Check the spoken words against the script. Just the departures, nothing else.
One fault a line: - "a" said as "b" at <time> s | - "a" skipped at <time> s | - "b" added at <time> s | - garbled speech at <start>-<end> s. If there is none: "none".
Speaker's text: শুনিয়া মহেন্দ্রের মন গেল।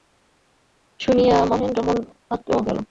none